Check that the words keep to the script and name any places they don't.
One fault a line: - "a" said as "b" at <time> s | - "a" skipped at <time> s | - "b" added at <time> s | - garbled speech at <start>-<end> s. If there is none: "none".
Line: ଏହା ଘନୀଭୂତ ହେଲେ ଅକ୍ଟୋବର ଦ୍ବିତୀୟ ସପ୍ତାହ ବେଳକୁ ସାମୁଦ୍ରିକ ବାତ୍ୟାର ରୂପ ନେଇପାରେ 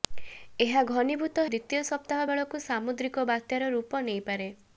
- "ହେଲେ ଅକ୍ଟୋବର" skipped at 1.4 s